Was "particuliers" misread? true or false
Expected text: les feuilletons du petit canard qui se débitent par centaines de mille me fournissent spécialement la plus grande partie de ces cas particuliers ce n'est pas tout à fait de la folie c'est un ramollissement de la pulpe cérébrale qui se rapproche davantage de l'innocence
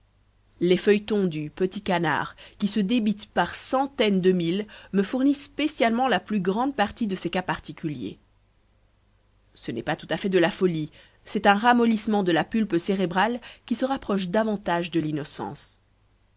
false